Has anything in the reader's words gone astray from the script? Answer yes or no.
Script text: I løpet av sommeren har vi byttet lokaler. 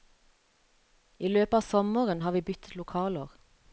no